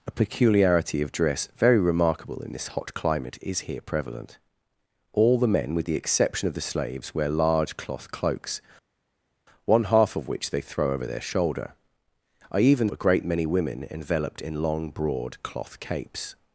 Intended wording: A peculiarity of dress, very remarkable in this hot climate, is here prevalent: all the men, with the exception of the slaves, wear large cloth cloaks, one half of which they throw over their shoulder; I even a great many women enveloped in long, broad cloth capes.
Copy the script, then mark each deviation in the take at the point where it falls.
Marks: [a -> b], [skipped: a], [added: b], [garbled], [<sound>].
A peculiarity of dress, very remarkable in this hot climate, is here prevalent: all the men, with the exception of the slaves, wear large cloth cloaks, one half of which they throw over their shoulder; I even a great many women enveloped in long, broad cloth capes.